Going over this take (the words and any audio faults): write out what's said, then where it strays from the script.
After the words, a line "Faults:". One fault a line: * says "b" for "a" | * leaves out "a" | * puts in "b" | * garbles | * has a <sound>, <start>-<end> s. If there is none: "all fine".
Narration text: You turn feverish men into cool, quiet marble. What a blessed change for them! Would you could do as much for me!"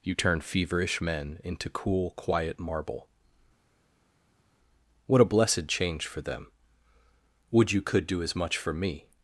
You turn feverish men into cool, quiet marble. What a blessed change for them! Would you could do as much for me!"
Faults:
all fine